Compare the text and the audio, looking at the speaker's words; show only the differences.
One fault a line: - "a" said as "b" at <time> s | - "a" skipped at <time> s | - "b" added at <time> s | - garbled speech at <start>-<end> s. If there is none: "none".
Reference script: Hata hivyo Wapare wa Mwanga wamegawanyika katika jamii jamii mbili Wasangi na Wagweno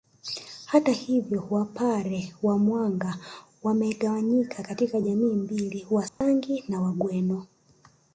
- "jamii" skipped at 5.3 s